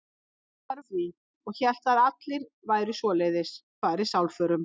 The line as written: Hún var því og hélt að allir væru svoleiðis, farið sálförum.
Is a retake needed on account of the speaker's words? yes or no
no